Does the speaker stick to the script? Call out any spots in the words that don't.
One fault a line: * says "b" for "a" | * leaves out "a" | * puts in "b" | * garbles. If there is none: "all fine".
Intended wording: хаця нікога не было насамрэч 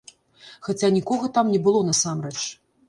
* puts in "там"